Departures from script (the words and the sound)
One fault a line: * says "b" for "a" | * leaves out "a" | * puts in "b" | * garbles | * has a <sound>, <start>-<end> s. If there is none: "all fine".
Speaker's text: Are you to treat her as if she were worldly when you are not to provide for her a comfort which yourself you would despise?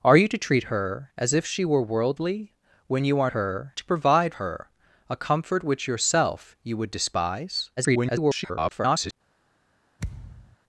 * says "her" for "not"
* leaves out "for"
* garbles
* has a thud, 10.0-10.6 s